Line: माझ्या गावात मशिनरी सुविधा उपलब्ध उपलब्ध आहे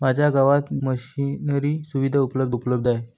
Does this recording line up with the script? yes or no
yes